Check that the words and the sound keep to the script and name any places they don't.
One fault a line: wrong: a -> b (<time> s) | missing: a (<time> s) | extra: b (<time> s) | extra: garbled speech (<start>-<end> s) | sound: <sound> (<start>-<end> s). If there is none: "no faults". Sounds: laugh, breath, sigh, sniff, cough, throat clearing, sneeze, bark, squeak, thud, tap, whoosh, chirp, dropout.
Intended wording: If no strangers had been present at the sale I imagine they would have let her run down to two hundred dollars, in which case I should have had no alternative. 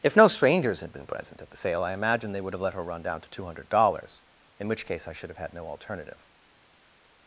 no faults